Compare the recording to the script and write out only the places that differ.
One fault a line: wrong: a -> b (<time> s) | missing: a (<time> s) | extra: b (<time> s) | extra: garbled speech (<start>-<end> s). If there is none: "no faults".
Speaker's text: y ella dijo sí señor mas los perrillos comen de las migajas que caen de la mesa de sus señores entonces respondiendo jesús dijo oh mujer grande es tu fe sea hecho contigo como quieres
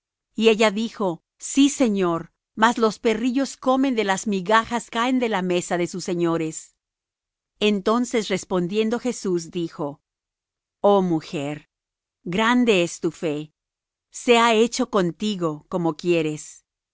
missing: que (4.9 s)